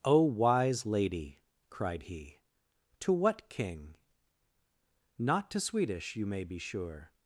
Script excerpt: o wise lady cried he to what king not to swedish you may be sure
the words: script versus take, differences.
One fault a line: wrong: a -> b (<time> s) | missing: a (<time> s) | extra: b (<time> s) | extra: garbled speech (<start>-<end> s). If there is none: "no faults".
no faults